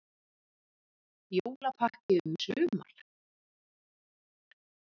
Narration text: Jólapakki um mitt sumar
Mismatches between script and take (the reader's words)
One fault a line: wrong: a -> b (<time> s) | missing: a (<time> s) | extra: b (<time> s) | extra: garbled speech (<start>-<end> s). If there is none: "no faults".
missing: mitt (2.3 s)